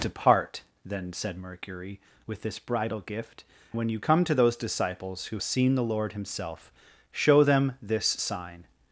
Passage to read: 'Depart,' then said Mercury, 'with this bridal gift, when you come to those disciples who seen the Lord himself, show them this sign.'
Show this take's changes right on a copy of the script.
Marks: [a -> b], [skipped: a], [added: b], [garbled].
'Depart,' then said Mercury, 'with this bridal gift, when you come to those disciples who seen the Lord himself, show them this sign.'